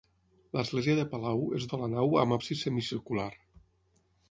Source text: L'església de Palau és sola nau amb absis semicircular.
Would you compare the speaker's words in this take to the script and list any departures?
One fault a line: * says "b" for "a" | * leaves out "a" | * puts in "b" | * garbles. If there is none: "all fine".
all fine